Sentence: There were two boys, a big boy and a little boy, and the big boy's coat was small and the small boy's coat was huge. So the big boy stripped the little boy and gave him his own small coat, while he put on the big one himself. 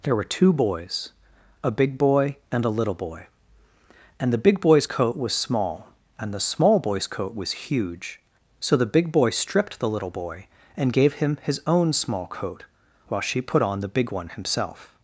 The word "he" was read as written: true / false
false